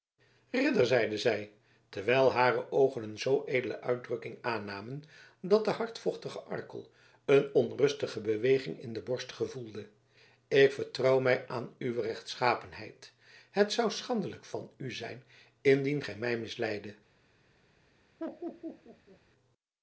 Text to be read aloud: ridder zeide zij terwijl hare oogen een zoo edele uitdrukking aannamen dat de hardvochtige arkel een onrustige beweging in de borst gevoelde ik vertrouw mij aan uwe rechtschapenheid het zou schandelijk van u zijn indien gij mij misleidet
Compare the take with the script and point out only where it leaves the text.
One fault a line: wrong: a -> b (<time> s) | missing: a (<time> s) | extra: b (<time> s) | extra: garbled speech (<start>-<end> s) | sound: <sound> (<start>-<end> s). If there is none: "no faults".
sound: laugh (18.2-19.2 s)